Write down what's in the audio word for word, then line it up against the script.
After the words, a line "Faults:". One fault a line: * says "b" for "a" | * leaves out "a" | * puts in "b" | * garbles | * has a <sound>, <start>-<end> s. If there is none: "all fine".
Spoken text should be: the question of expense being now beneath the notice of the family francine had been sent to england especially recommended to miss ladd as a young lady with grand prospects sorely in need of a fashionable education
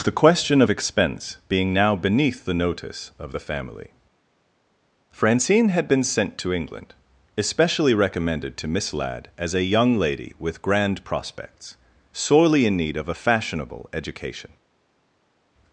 the question of expense being now beneath the notice of the family francine had been sent to england especially recommended to miss ladd as a young lady with grand prospects sorely in need of a fashionable education
Faults:
all fine